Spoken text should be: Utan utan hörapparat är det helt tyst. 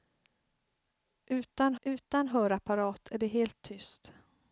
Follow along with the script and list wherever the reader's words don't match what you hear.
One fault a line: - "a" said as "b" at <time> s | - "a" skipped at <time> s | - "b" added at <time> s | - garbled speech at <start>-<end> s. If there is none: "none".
none